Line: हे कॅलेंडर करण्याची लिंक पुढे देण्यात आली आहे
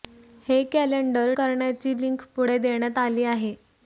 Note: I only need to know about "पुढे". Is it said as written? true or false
true